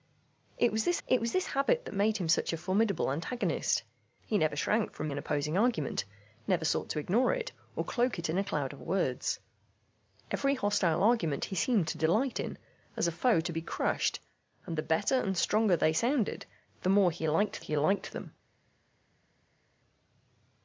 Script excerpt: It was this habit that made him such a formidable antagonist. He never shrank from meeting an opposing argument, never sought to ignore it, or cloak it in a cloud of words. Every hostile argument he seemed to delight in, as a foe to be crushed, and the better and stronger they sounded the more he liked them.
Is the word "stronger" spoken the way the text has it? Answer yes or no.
yes